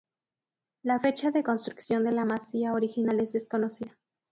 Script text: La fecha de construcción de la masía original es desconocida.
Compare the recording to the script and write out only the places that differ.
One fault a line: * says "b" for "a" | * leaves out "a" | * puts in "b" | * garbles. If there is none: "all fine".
all fine